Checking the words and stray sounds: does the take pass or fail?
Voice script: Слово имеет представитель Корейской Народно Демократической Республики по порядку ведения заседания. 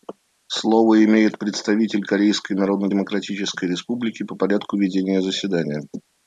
pass